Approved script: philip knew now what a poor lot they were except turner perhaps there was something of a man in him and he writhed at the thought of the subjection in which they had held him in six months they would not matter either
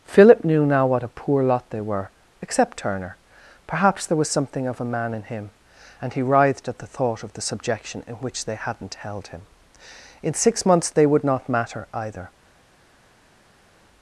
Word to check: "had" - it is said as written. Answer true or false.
false